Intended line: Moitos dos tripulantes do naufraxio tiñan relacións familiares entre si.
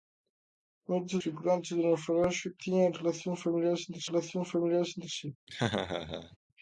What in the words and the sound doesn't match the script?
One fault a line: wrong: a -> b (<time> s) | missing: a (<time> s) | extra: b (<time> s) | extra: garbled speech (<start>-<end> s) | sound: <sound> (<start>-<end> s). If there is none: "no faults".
missing: dos (1.2 s)
extra: relacións familiares entre (4.1 s)
sound: laugh (5.5-6.4 s)